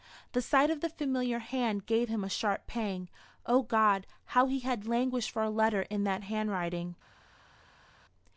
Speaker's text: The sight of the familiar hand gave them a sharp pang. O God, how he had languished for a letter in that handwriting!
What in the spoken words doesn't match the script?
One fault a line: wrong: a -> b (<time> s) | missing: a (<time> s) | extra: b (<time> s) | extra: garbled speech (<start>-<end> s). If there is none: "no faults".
wrong: them -> him (2.1 s)